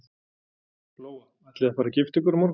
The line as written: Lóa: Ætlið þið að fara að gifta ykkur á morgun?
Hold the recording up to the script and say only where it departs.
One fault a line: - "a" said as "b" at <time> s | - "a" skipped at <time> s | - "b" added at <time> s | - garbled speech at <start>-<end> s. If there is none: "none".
none